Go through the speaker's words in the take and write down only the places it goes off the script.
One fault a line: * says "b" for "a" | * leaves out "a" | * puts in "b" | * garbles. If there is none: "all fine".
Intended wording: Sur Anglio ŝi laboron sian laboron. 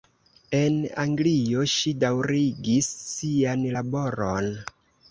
* says "En" for "Sur"
* says "daŭrigis" for "laboron"